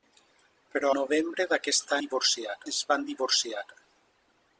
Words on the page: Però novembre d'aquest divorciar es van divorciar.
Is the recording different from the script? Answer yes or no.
no